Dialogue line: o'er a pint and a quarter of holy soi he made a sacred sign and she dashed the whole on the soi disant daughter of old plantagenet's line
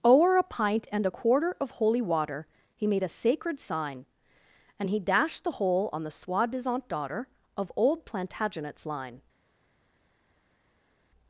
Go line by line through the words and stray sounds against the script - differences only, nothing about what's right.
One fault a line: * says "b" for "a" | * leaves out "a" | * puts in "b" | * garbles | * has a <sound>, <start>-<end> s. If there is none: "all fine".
* says "water" for "soi"
* says "he" for "she"